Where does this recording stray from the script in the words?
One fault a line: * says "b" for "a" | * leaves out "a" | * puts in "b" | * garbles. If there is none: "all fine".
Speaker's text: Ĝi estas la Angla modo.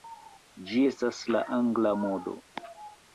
all fine